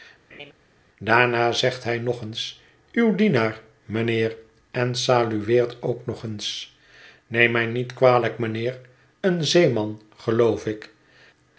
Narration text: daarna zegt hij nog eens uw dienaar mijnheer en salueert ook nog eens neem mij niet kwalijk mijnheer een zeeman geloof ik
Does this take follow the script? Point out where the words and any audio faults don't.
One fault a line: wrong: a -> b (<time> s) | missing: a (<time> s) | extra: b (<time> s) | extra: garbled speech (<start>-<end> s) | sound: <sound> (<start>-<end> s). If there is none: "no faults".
sound: laugh (0.3-0.5 s)